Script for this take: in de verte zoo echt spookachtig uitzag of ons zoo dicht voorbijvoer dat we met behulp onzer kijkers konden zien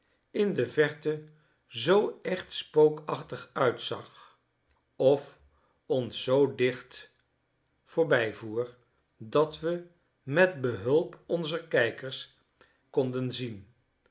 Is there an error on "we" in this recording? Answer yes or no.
no